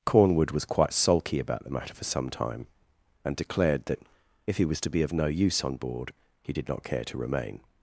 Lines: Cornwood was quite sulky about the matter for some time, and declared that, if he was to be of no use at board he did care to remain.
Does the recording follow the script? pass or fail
fail